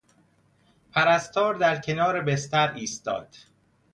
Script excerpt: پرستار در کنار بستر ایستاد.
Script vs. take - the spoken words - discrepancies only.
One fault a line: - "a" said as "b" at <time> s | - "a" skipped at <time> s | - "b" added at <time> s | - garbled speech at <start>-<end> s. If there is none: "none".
none